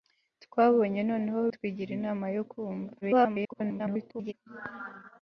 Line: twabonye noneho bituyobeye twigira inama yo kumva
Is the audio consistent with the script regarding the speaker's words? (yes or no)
no